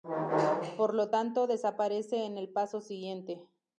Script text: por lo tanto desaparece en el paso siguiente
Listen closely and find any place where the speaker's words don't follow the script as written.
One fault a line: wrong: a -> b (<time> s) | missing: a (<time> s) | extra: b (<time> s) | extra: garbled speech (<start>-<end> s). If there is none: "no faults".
no faults